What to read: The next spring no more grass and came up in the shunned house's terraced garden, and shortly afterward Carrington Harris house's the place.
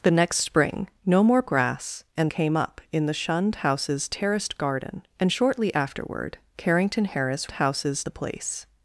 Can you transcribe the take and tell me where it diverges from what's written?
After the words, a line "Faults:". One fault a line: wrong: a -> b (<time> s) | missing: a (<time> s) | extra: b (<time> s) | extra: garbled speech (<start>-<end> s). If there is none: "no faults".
The next spring no more grass and came up in the shunned house's terraced garden, and shortly afterward Carrington Harris house's the place.
Faults:
no faults